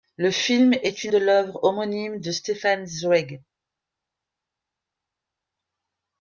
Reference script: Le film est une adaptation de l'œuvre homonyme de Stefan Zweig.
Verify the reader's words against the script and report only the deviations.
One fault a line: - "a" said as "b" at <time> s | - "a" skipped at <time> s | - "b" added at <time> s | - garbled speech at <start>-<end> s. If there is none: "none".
- "adaptation" skipped at 1.1 s